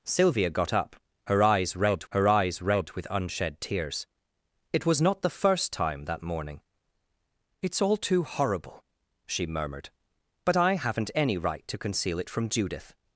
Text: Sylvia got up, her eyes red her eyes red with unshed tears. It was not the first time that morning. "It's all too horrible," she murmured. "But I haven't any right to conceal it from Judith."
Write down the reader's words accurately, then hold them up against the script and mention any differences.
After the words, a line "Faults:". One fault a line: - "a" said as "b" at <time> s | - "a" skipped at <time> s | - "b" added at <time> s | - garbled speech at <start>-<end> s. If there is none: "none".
Sylvia got up, her eyes red her eyes red with unshed tears. It was not the first time that morning. "It's all too horrible," she murmured. "But I haven't any right to conceal it from Judith."
Faults:
none